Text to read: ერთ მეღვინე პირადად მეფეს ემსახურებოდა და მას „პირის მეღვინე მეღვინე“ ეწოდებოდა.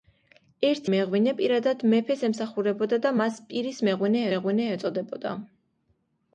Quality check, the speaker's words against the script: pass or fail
pass